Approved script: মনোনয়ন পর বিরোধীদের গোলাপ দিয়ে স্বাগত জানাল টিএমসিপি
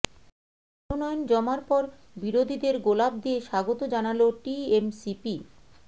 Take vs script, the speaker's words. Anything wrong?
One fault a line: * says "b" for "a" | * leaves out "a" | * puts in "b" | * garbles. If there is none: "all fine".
* puts in "জমার"